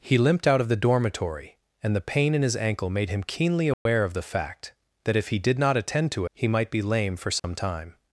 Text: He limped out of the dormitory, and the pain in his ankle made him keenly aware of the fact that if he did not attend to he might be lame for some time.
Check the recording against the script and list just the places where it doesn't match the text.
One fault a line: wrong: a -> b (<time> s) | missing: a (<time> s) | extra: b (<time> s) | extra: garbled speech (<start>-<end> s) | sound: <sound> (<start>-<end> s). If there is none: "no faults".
sound: dropout (3.7-3.9 s)
sound: dropout (7.4-7.4 s)